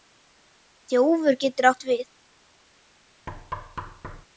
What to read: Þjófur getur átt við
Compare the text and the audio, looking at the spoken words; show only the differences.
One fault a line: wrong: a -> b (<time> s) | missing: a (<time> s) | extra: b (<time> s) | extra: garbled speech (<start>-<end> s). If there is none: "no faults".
no faults